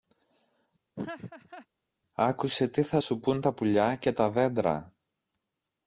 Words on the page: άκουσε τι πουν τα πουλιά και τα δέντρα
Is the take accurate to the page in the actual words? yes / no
no